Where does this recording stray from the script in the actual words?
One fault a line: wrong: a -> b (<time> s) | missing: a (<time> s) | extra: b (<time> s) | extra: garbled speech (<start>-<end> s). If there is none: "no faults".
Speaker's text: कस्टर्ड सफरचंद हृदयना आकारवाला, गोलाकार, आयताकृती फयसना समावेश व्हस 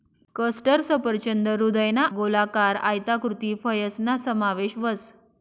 missing: आकारवाला (2.0 s)